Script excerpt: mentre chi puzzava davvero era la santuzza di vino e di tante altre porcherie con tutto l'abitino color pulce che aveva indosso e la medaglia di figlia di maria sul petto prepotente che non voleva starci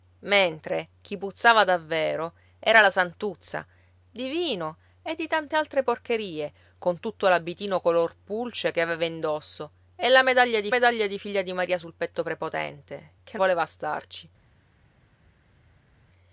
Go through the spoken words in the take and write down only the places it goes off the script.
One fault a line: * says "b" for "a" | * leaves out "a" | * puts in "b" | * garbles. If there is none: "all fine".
* puts in "medaglia di"
* leaves out "non"